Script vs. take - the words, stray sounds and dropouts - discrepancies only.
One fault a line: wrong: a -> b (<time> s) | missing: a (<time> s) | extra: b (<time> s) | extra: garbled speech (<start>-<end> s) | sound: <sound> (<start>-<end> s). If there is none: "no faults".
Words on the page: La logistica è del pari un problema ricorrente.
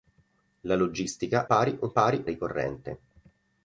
missing: è del (1.5 s)
wrong: problema -> pari (1.9 s)